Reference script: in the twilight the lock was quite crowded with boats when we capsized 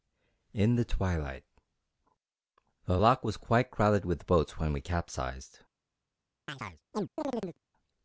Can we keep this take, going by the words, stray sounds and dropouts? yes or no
no